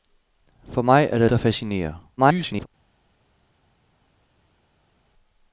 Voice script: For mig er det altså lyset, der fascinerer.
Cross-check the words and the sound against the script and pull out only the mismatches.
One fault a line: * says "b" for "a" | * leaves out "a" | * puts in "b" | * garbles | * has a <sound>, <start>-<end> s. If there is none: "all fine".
* leaves out "altså lyset"
* garbles